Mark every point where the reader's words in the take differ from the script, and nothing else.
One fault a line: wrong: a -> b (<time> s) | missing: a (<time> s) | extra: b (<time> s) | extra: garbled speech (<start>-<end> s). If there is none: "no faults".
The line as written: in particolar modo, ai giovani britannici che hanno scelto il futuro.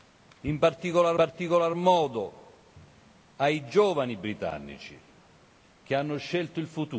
extra: particolar (1.1 s)